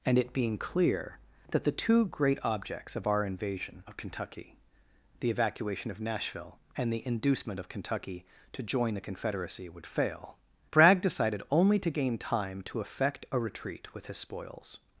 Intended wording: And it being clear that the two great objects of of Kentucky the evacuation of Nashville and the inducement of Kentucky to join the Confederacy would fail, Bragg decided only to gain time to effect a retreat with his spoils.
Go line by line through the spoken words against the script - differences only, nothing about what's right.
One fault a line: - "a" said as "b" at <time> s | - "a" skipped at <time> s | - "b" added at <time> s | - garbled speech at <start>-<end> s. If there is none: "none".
- "our invasion" added at 3.0 s